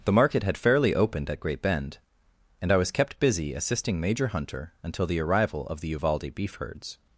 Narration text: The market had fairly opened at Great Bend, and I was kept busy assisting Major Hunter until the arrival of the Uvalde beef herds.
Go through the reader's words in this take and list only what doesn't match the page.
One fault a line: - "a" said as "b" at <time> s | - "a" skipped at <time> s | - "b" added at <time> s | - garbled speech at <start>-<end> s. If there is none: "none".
none